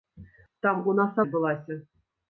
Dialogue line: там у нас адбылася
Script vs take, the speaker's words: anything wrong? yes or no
no